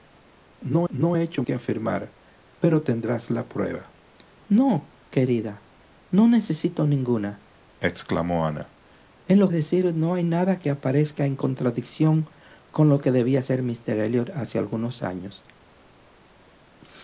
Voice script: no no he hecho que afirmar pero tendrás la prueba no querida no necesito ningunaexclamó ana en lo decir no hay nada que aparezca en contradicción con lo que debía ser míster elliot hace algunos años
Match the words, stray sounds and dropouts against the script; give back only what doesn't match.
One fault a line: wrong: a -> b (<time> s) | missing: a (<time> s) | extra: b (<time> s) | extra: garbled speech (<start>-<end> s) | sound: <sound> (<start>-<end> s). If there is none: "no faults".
no faults